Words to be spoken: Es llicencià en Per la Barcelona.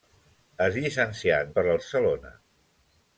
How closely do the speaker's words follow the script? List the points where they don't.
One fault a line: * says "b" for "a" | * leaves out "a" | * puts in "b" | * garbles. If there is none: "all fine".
all fine